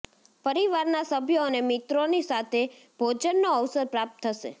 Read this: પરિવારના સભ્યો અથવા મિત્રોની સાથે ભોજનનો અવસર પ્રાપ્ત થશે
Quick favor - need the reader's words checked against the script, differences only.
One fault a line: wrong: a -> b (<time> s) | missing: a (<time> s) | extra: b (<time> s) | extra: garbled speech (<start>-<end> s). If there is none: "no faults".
wrong: અથવા -> અને (1.5 s)